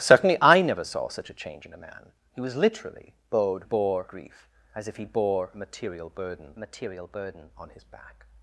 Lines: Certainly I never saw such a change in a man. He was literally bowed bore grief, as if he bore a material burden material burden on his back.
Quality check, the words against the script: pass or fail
pass